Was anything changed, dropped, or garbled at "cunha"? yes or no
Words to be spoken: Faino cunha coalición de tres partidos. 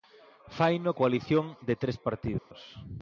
yes